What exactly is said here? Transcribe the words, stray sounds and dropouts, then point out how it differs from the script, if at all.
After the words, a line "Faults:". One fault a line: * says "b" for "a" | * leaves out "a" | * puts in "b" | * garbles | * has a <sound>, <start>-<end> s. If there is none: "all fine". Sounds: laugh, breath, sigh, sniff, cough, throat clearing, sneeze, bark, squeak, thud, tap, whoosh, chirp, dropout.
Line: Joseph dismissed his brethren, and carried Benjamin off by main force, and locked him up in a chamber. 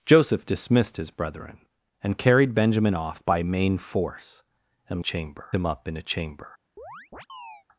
Joseph dismissed his brethren, and carried Benjamin off by main force, and chamber him up in a chamber.
Faults:
* says "chamber" for "locked"
* has a chirp, 6.8-7.6 s